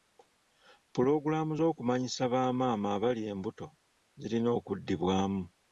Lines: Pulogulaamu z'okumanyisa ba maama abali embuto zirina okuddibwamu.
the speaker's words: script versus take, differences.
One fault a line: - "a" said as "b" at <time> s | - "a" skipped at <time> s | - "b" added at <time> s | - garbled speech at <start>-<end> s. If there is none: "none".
none